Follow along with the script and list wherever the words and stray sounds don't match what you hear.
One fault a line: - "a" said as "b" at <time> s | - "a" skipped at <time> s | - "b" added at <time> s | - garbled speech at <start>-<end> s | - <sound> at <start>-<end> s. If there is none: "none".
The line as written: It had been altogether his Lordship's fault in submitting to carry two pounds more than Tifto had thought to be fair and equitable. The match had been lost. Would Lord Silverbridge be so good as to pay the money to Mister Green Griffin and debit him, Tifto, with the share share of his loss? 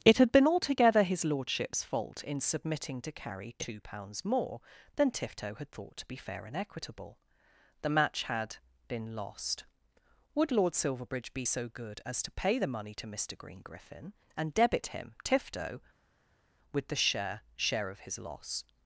none